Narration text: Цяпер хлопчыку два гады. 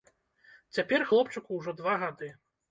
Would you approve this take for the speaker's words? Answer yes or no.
no